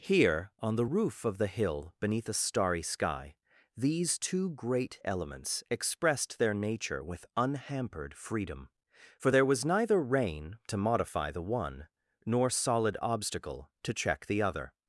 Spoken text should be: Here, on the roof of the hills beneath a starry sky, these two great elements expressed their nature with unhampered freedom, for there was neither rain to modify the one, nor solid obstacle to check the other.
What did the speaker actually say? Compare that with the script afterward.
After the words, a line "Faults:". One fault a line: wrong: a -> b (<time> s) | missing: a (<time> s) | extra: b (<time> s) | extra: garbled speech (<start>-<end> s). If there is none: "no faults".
Here, on the roof of the hill beneath a starry sky, these two great elements expressed their nature with unhampered freedom, for there was neither rain to modify the one, nor solid obstacle to check the other.
Faults:
wrong: hills -> hill (1.5 s)